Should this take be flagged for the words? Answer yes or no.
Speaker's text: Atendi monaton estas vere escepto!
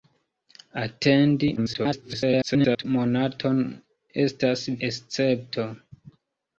yes